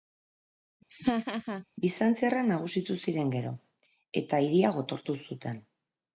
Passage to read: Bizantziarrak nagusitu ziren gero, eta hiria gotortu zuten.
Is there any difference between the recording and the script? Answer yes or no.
no